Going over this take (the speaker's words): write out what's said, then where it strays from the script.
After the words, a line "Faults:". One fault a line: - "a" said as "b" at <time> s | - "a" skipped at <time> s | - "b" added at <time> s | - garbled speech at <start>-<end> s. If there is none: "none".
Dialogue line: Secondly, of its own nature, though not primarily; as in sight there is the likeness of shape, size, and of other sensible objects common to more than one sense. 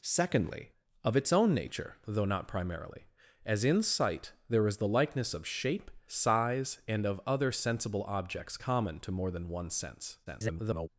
Secondly, of its own nature, though not primarily; as in sight there is the likeness of shape, size, and of other sensible objects common to more than one sense. [garbled]
Faults:
- garbled speech at 10.3-10.9 s